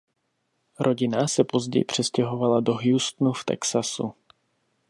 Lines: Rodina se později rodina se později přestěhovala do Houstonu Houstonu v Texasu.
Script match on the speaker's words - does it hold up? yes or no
no